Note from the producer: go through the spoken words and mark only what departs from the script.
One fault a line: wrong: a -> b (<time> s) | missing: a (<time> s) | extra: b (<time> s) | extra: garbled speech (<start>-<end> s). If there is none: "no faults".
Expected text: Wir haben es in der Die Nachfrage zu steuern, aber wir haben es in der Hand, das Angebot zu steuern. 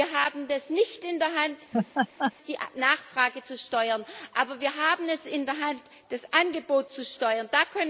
extra: nicht (0.7 s)
extra: Hand (1.4 s)